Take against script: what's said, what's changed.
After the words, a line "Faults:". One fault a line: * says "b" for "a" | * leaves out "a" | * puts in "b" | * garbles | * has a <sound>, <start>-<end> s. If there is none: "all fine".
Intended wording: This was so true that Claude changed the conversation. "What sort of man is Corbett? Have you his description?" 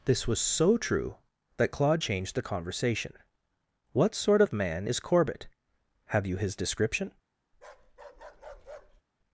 This was so true that Claude changed the conversation. "What sort of man is Corbett? Have you his description?"
Faults:
* has a bark, 7.5-9.0 s